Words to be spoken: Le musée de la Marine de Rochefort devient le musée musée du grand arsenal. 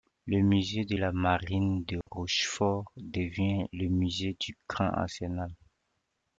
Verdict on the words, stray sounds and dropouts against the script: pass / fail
fail